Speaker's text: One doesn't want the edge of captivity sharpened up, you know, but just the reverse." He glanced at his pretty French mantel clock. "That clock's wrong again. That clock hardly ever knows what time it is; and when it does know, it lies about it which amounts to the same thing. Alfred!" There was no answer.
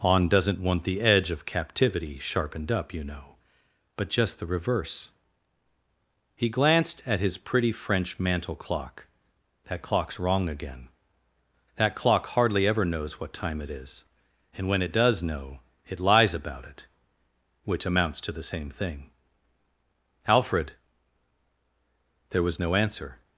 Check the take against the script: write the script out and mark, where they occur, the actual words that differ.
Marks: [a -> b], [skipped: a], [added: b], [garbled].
[One -> On] doesn't want the edge of captivity sharpened up, you know, but just the reverse." He glanced at his pretty French mantel clock. "That clock's wrong again. That clock hardly ever knows what time it is; and when it does know, it lies about it which amounts to the same thing. Alfred!" There was no answer.